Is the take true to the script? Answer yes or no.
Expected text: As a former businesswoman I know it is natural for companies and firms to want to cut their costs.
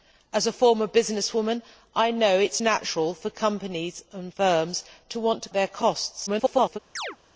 no